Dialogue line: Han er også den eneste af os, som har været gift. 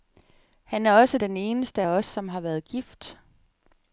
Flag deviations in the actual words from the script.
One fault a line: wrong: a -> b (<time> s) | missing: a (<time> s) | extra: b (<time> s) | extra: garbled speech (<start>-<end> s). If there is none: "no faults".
no faults